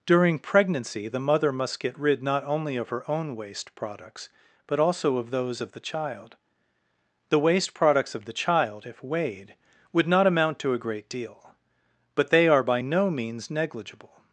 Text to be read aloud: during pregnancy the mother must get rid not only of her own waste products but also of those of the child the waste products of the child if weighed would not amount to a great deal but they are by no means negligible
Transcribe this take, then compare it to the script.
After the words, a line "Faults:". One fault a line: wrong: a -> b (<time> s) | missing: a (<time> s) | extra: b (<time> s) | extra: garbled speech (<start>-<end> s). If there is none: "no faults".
during pregnancy the mother must get rid not only of her own waste products but also of those of the child the waste products of the child if weighed would not amount to a great deal but they are by no means negligible
Faults:
no faults